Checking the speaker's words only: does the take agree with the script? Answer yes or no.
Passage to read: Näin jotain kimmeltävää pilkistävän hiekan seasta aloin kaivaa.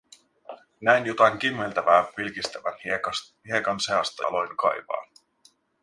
yes